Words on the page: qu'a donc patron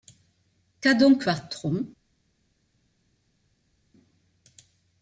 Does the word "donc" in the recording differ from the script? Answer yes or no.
no